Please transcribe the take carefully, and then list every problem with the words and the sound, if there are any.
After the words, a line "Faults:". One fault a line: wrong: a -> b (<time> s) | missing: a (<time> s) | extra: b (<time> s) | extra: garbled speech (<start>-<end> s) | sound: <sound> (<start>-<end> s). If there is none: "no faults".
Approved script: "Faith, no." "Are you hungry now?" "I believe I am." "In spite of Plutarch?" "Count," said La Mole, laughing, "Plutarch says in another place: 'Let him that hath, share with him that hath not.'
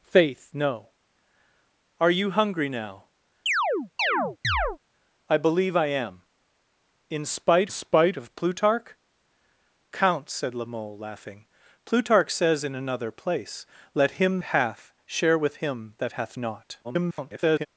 "Faith, no." "Are you hungry now?" "I believe I am." "In spite spite of Plutarch?" "Count," said La Mole, laughing, "Plutarch says in another place: 'Let him hath, share with him that hath not.' [garbled]
Faults:
sound: chirp (3.5-4.8 s)
extra: spite (7.7 s)
missing: that (14.4 s)
extra: garbled speech (16.8-17.7 s)